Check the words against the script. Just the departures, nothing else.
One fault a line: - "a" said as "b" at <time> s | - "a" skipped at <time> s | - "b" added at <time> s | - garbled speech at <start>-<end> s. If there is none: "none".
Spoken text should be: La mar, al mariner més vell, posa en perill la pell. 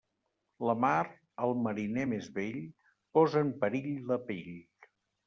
none